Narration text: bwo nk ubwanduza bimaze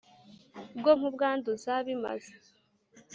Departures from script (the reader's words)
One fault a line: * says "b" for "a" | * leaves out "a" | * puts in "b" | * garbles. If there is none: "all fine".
all fine